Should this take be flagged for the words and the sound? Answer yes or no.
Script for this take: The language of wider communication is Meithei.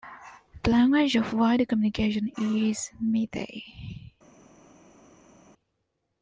no